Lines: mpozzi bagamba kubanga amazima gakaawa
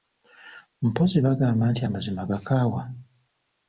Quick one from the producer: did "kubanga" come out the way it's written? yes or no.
no